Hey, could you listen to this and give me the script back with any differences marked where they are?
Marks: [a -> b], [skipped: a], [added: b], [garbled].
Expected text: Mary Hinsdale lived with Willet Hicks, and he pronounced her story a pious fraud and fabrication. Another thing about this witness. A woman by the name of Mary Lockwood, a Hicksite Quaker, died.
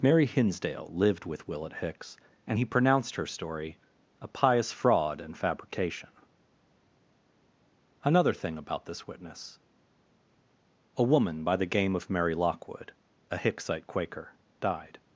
Mary Hinsdale lived with Willet Hicks, and he pronounced her story a pious fraud and fabrication. Another thing about this witness. A woman by the [name -> game] of Mary Lockwood, a Hicksite Quaker, died.